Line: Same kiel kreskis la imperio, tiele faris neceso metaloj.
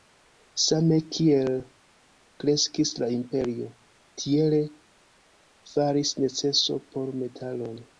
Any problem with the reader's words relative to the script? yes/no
yes